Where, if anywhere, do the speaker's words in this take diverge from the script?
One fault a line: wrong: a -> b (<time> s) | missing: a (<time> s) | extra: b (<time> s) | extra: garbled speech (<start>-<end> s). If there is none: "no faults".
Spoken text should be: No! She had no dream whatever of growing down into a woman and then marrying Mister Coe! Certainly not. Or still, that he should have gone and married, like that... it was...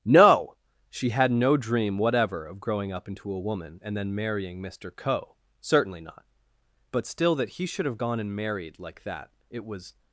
wrong: down -> up (2.9 s)
wrong: Or -> But (6.9 s)